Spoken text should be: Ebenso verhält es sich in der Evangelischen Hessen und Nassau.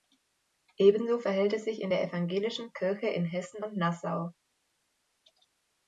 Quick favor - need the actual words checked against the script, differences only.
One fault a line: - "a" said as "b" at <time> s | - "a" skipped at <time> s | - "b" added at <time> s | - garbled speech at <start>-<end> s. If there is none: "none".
- "Kirche in" added at 2.7 s